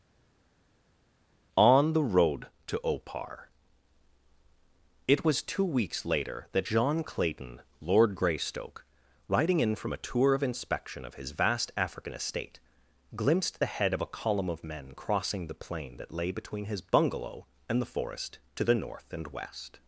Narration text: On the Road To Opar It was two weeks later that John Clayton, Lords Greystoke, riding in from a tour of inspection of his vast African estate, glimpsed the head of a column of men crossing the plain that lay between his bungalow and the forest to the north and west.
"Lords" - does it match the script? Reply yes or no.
no